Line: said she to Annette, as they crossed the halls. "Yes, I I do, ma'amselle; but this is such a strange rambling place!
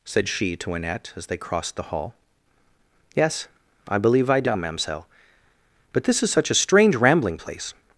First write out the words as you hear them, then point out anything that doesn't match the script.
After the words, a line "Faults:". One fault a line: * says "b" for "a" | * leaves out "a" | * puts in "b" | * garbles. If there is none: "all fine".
said she to Annette, as they crossed the hall. "Yes, I believe I do, ma'amselle; but this is such a strange rambling place!
Faults:
* says "hall" for "halls"
* puts in "believe"